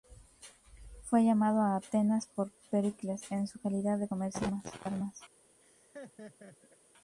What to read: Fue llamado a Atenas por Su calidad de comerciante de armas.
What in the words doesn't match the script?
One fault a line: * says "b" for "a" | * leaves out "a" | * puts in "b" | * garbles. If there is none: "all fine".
* puts in "Pericles en"